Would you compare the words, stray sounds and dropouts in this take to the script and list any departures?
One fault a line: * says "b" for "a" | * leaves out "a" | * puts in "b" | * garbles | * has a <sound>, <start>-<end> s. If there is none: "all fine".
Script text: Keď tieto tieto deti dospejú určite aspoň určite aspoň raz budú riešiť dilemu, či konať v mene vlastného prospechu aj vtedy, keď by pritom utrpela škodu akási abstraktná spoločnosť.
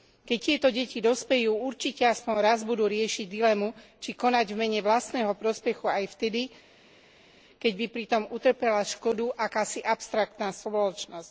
* leaves out "tieto"
* leaves out "určite aspoň"